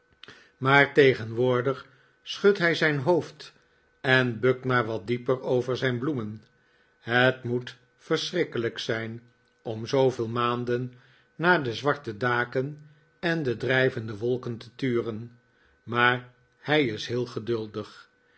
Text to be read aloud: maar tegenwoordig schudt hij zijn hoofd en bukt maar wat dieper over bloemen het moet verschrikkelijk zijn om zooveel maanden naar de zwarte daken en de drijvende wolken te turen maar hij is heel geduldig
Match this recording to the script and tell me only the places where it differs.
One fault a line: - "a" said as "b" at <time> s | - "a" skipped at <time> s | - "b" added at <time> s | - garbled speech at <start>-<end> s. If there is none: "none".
- "zijn" added at 5.8 s